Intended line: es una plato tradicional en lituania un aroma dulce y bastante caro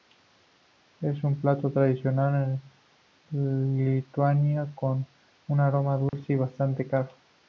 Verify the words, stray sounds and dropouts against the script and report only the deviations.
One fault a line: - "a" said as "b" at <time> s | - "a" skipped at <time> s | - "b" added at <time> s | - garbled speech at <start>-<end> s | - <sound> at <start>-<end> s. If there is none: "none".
- "una" said as "un" at 1.2 s
- "con" added at 4.7 s
- dropout at 6.1-6.1 s